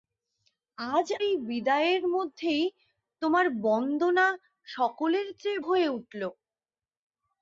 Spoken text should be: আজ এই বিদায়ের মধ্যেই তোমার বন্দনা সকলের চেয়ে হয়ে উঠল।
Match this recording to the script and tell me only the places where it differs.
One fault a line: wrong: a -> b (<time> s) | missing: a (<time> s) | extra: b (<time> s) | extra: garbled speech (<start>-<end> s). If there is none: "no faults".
no faults